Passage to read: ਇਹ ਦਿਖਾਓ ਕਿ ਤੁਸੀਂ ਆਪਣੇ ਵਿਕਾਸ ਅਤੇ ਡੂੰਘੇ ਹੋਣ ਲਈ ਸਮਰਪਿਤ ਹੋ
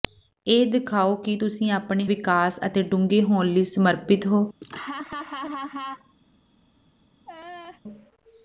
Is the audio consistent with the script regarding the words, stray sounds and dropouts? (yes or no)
no